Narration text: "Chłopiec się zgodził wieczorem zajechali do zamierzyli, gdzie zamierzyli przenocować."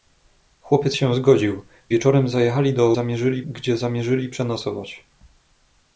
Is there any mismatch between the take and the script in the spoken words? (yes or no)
no